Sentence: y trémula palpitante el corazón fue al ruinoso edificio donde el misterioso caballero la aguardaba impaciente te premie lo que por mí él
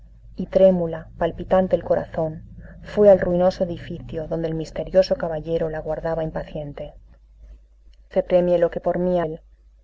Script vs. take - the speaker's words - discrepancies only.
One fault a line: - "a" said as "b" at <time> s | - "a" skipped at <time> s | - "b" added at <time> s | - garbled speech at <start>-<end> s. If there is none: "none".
none